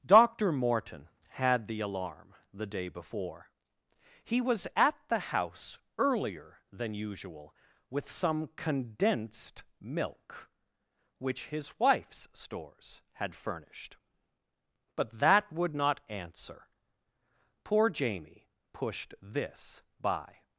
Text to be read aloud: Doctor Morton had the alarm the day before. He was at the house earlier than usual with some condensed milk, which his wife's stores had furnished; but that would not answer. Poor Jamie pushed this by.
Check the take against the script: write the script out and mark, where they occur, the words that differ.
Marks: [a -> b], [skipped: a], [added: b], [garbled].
Doctor Morton had the alarm the day before. He was at the house earlier than usual with some condensed milk, which his wife's stores had furnished; but that would not answer. Poor Jamie pushed this by.